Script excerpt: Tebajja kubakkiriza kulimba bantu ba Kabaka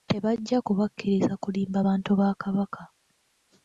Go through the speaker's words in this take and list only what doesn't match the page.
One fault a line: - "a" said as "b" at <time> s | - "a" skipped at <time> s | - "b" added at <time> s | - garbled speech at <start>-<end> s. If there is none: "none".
none